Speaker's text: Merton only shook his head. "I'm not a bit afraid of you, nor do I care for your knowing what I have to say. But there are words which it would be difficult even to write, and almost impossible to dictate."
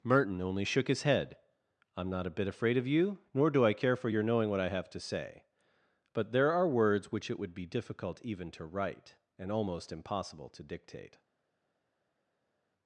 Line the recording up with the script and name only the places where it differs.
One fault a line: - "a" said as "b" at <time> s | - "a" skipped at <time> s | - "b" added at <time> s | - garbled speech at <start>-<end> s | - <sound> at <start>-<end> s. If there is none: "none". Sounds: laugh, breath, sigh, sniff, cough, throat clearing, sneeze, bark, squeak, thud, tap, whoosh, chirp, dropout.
none